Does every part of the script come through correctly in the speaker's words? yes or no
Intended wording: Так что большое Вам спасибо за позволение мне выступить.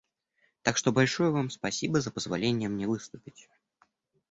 yes